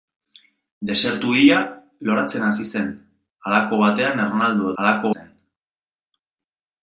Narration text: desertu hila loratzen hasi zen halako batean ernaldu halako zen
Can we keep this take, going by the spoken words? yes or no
yes